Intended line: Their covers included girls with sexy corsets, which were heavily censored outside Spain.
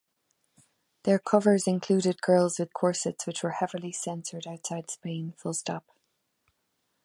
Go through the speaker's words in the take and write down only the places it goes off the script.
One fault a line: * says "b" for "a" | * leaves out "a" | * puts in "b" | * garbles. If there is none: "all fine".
* leaves out "sexy"